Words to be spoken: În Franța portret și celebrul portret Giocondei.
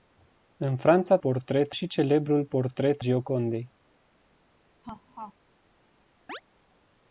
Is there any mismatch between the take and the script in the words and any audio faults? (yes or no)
yes